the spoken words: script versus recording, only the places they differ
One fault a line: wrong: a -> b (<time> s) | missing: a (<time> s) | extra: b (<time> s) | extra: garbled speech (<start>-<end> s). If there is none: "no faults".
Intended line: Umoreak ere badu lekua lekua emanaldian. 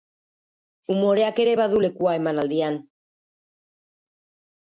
missing: lekua (2.2 s)